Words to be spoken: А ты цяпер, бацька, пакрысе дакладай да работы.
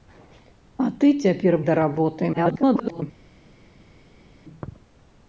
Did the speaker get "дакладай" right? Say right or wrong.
wrong